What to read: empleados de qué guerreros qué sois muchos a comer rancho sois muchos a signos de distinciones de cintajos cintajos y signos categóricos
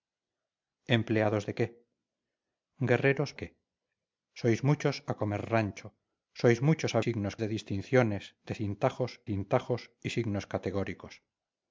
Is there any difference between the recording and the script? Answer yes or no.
no